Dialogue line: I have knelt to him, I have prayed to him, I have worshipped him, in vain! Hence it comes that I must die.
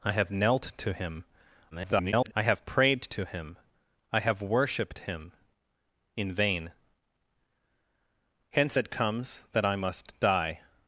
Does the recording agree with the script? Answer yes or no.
no